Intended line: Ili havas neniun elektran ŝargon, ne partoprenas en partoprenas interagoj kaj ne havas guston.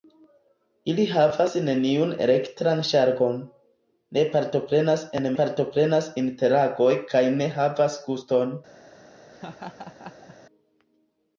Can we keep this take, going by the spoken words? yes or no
yes